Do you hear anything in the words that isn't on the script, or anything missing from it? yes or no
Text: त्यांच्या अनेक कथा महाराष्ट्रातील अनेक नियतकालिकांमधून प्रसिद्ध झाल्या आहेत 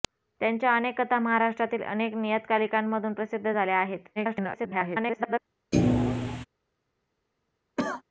yes